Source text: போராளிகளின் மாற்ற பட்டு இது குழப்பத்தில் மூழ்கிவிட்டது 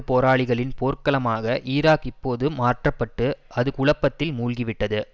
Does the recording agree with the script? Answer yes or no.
no